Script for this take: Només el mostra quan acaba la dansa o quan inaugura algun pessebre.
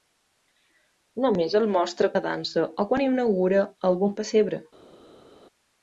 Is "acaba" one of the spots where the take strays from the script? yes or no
yes